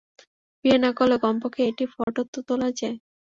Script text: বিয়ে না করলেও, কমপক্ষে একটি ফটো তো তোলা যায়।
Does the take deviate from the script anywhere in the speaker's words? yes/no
no